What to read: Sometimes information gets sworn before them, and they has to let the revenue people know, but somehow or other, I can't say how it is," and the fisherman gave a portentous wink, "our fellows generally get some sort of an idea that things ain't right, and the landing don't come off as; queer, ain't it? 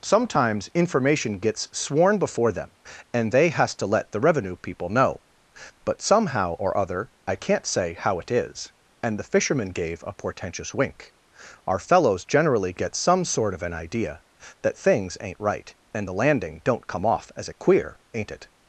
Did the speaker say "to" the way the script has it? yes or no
yes